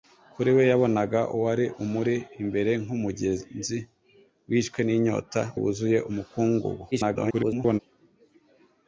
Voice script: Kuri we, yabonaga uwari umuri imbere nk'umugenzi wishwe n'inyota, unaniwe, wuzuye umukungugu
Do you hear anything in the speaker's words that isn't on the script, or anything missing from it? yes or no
yes